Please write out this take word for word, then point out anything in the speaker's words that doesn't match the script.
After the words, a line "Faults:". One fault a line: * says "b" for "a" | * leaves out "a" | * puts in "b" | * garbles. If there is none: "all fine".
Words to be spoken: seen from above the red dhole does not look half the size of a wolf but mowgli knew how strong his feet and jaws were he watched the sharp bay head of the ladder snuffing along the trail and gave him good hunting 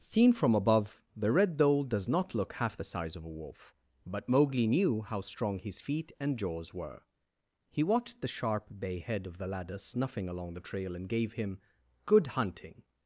seen from above the red dhole does not look half the size of a wolf but mowgli knew how strong his feet and jaws were he watched the sharp bay head of the ladder snuffing along the trail and gave him good hunting
Faults:
all fine